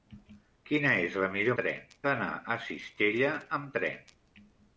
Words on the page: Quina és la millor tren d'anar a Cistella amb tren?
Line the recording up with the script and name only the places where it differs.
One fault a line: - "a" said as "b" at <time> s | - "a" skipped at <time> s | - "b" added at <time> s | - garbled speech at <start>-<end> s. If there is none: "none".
none